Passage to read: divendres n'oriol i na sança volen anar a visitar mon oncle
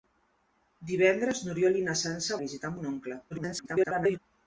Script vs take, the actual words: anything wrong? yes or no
yes